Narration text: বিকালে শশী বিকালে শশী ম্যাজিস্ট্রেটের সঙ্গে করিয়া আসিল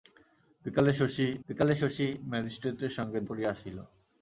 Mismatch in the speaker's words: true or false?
false